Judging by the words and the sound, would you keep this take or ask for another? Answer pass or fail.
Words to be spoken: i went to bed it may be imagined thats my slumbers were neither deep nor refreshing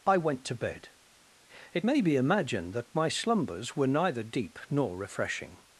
fail